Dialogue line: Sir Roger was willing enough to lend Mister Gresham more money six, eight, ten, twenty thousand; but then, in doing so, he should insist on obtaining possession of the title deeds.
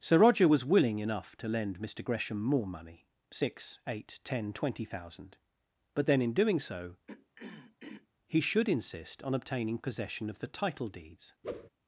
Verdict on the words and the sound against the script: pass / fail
fail